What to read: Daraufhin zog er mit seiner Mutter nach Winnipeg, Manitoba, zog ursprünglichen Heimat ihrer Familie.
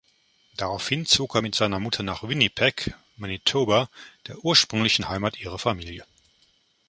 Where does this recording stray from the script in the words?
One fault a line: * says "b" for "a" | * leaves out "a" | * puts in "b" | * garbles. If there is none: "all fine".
* says "der" for "zog"